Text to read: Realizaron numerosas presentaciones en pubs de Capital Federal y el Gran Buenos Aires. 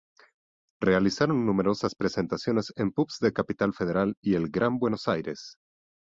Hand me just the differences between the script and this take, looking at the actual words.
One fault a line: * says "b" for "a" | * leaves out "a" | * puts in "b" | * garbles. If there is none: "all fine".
all fine